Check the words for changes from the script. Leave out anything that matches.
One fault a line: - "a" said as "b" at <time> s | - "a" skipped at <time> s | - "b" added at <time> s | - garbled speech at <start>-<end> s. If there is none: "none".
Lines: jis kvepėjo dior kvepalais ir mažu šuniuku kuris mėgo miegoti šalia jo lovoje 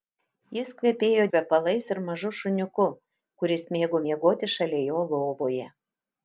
- "dior" skipped at 1.2 s